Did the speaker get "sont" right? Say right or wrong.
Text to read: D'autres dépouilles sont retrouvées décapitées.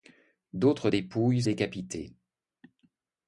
wrong